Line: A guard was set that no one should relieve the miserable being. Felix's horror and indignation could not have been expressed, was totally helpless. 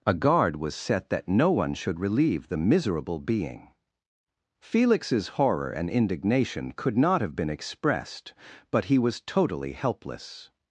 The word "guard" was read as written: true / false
true